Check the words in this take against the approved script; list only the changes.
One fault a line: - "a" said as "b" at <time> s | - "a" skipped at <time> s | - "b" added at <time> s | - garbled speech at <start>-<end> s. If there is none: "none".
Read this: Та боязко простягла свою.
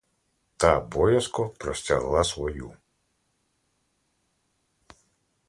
none